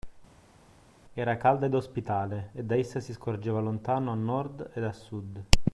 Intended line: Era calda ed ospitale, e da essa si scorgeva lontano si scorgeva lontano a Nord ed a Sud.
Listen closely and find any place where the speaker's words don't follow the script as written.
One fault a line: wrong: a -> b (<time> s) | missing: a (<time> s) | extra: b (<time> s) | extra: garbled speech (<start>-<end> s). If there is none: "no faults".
missing: si scorgeva lontano (4.1 s)